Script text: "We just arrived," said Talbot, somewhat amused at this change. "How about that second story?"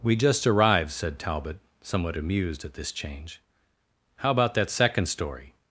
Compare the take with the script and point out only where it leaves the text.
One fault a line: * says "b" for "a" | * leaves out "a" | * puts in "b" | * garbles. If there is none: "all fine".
all fine